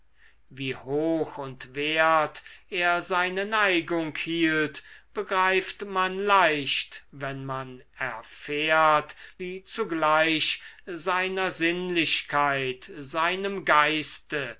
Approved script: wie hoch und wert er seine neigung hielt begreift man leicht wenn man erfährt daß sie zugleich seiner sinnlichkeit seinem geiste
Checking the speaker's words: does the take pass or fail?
fail